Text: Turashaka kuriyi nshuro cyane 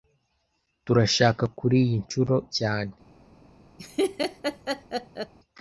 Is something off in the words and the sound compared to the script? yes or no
yes